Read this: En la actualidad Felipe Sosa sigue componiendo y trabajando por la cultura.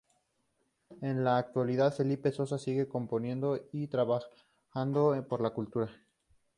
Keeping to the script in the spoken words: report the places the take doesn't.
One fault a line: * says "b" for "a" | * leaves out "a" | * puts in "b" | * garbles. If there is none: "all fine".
all fine